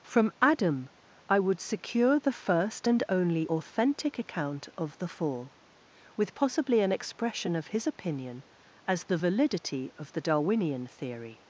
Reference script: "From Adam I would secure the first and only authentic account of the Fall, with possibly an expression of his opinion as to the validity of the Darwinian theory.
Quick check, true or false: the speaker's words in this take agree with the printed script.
false